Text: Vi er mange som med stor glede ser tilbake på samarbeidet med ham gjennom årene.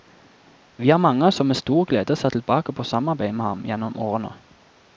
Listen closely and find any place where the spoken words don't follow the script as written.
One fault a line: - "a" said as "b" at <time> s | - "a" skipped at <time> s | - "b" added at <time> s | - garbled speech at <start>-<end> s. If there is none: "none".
none